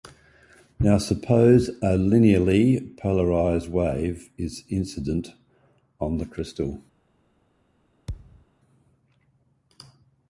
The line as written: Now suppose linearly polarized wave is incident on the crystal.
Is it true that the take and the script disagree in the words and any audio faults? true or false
true